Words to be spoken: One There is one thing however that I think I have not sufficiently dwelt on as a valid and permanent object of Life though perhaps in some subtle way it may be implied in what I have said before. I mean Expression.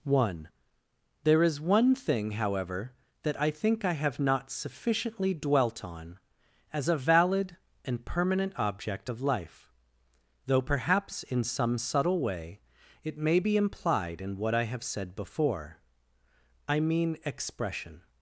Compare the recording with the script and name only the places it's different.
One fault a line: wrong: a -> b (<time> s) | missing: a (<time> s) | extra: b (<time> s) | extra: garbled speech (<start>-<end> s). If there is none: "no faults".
no faults